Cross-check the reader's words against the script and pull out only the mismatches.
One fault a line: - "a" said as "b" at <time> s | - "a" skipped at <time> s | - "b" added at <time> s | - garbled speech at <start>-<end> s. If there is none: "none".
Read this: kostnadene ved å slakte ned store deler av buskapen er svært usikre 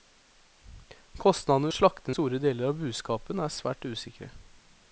- "ved" skipped at 1.7 s
- "ned" skipped at 2.1 s